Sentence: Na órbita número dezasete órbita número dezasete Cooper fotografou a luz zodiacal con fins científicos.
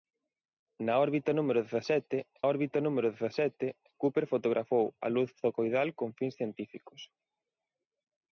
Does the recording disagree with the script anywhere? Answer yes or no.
no